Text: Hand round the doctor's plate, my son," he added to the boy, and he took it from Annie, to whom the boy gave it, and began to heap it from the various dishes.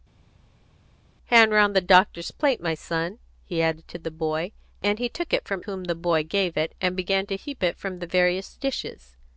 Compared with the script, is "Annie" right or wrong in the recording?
wrong